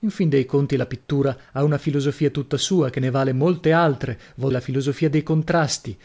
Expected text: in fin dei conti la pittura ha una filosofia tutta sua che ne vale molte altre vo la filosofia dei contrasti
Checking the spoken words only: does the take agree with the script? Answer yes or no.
yes